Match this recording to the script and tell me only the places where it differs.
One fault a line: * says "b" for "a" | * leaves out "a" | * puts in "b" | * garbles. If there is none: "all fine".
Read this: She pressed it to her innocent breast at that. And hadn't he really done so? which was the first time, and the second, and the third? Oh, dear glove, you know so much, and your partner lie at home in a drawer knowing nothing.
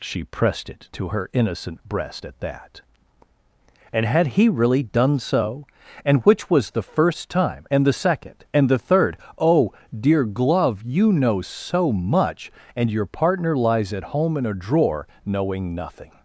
* says "had" for "hadn't"
* puts in "and"
* says "lies" for "lie"